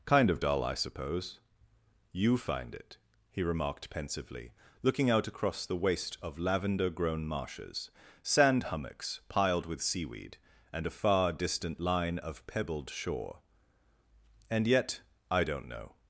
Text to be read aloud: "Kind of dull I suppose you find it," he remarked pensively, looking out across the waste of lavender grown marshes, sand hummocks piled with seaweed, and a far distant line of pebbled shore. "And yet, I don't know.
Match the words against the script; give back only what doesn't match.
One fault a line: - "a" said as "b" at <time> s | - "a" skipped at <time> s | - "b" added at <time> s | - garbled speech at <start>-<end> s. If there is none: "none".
none